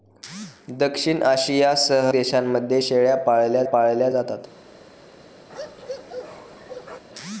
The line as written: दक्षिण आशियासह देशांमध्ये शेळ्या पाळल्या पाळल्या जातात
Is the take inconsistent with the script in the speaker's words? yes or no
no